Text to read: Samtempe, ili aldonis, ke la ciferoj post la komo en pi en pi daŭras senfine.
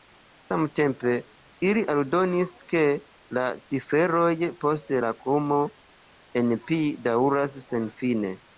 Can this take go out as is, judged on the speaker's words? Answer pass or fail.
fail